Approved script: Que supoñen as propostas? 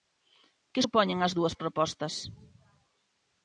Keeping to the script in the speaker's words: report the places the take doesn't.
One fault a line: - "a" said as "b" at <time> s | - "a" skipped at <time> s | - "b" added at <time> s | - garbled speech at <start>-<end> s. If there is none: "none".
- "dúas" added at 1.4 s